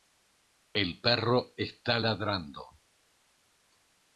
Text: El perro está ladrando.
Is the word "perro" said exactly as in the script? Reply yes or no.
yes